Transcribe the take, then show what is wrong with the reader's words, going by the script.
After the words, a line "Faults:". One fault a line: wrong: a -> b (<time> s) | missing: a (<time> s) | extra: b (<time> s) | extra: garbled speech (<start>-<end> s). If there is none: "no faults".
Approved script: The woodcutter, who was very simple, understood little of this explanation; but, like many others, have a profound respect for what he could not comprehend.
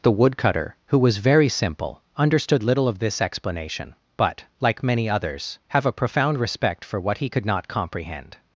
The woodcutter, who was very simple, understood little of this explanation; but, like many others, have a profound respect for what he could not comprehend.
Faults:
no faults